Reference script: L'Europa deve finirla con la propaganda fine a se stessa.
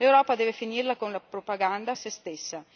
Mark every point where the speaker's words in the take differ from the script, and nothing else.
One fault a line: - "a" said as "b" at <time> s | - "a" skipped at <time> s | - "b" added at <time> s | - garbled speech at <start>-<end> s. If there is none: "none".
- "fine" skipped at 1.9 s